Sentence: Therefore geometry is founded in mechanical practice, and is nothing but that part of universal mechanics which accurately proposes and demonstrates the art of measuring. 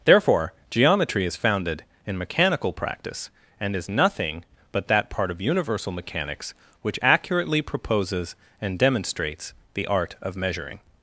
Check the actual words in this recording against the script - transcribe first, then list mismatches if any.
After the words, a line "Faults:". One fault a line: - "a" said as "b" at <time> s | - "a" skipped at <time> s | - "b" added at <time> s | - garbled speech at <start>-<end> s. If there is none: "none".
Therefore geometry is founded in mechanical practice, and is nothing but that part of universal mechanics which accurately proposes and demonstrates the art of measuring.
Faults:
none